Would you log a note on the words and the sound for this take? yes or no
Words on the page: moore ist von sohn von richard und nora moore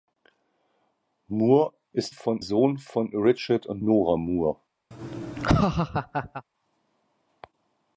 yes